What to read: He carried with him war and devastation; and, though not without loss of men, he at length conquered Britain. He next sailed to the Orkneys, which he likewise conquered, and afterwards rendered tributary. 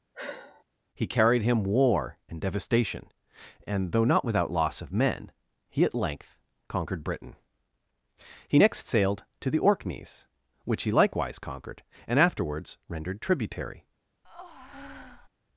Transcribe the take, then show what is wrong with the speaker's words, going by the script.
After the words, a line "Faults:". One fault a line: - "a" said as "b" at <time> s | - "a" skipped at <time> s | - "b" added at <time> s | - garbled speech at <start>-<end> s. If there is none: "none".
He carried him war and devastation; and, though not without loss of men, he at length conquered Britain. He next sailed to the Orkneys, which he likewise conquered, and afterwards rendered tributary.
Faults:
- "with" skipped at 1.4 s